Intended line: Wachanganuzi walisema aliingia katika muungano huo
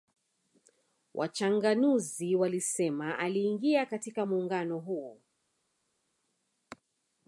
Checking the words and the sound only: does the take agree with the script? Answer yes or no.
yes